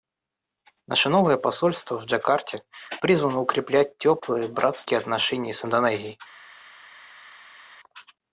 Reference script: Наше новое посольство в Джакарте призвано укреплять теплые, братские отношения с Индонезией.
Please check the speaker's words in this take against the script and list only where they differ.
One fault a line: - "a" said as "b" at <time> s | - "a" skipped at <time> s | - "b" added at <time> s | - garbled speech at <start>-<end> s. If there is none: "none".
none